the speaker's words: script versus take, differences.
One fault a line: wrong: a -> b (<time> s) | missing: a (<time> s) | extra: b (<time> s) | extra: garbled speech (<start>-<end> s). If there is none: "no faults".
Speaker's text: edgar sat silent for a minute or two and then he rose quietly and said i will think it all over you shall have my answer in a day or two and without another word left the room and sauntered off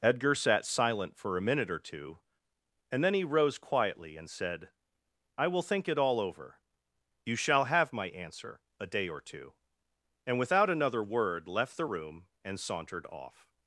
missing: in (8.6 s)